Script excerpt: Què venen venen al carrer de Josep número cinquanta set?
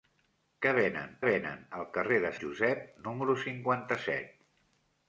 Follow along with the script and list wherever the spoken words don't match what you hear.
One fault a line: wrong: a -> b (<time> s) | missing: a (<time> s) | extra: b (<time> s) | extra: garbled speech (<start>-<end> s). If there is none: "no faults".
no faults